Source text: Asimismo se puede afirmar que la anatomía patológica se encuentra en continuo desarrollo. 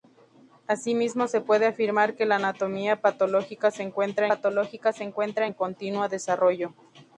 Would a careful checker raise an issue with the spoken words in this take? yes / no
yes